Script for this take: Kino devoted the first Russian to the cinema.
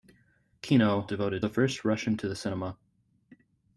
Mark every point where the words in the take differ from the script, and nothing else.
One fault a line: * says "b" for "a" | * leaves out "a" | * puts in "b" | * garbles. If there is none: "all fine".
all fine